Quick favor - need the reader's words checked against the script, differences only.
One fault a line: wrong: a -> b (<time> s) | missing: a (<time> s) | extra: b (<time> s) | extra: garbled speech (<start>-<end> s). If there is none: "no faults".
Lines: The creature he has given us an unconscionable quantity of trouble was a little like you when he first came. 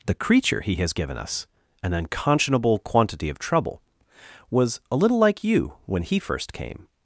no faults